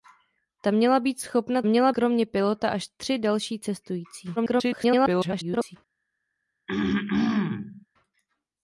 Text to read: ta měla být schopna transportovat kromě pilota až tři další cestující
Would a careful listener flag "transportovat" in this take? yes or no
yes